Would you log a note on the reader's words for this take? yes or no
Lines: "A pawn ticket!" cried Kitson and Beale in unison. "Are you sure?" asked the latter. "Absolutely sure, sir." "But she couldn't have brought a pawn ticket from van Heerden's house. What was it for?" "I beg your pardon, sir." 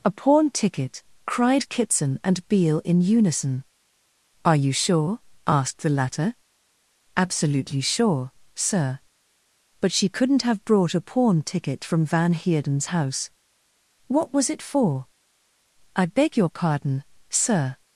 no